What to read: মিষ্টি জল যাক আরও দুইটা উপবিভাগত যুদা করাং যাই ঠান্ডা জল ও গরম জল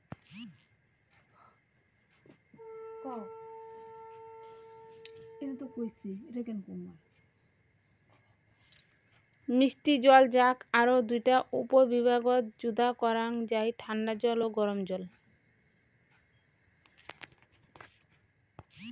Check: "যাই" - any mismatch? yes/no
no